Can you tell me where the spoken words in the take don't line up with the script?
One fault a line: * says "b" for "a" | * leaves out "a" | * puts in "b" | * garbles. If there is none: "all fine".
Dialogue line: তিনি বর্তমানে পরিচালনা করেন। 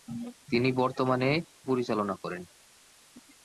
all fine